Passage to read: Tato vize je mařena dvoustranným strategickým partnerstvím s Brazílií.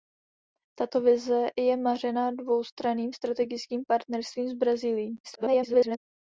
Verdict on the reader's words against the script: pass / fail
fail